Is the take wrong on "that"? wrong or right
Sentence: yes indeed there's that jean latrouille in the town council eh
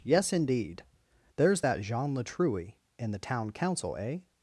right